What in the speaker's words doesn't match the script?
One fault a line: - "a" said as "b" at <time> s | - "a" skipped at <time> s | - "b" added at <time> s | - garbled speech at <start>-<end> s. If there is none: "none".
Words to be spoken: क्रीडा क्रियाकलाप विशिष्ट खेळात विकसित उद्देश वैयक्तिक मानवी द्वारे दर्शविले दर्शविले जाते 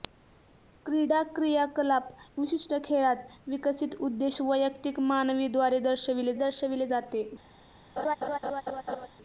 none